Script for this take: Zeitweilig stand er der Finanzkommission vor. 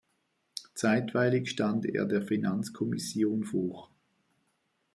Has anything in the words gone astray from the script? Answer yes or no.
no